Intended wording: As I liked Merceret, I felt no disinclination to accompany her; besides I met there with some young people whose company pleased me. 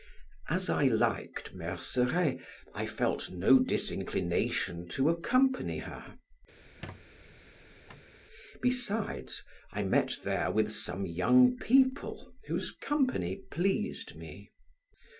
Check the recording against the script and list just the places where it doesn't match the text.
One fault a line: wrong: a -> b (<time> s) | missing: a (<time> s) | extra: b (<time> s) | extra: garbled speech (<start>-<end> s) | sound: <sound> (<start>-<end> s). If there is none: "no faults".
sound: squeak (6.6-8.1 s)